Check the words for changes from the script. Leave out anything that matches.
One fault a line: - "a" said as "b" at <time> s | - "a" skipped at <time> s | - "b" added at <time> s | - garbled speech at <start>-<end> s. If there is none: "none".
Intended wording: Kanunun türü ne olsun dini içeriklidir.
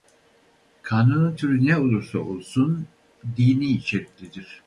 - "olursa" added at 1.8 s